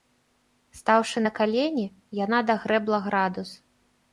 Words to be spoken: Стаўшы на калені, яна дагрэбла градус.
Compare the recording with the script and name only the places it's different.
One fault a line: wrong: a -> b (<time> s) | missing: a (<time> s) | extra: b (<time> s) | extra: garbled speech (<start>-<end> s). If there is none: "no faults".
no faults